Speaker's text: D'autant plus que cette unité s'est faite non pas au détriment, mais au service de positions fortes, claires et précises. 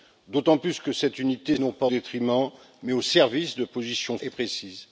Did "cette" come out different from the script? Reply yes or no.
no